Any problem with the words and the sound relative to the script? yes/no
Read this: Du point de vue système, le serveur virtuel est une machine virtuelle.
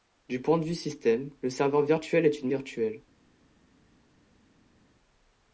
yes